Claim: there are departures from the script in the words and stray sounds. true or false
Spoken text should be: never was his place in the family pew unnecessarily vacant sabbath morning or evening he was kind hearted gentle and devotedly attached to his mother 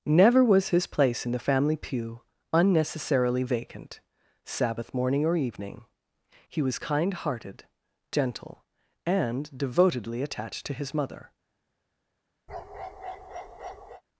true